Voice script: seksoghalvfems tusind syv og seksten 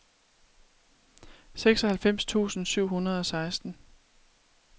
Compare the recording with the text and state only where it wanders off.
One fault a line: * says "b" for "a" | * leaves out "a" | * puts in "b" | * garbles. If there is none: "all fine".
* puts in "hundrede"